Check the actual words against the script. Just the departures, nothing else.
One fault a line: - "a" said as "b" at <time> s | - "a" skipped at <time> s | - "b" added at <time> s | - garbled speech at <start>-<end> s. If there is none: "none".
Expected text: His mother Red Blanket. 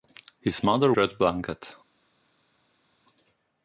none